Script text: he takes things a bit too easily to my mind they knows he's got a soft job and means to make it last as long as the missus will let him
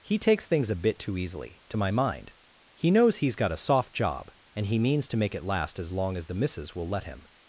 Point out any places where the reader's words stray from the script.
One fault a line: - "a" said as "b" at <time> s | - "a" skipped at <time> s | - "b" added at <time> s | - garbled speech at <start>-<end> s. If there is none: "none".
- "they" said as "he" at 2.7 s
- "he" added at 4.7 s